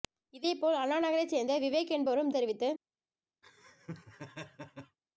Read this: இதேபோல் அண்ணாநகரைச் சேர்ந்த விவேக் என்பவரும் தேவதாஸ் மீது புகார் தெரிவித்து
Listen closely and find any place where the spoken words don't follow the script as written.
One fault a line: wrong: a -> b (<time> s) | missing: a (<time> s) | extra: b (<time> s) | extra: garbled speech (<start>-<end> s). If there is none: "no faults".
missing: தேவதாஸ் மீது புகார் (2.3 s)